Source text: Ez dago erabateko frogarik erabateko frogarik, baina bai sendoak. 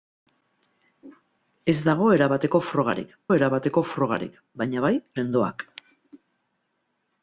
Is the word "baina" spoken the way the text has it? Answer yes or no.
yes